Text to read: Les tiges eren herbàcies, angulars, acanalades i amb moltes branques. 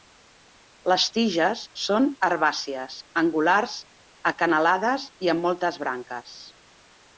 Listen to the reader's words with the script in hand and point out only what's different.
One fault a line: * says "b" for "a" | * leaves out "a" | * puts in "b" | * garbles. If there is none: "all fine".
* says "són" for "eren"